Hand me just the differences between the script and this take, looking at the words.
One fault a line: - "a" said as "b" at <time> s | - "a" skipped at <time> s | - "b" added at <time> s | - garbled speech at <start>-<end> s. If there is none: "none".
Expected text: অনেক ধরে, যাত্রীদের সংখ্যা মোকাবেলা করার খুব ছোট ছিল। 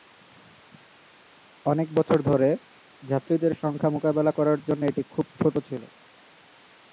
- "বছর" added at 1.9 s
- "জন্য এটি" added at 4.6 s